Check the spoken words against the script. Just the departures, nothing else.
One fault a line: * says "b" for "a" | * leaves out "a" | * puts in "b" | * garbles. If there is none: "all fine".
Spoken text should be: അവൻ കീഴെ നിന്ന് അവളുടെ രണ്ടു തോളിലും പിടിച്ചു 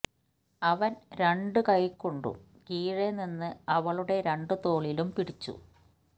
* puts in "രണ്ടു കൈകൊണ്ടും"